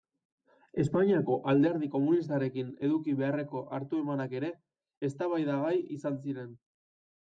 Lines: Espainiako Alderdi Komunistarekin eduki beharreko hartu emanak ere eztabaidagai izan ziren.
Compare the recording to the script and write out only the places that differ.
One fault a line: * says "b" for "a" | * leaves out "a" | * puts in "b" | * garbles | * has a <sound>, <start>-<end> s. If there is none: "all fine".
all fine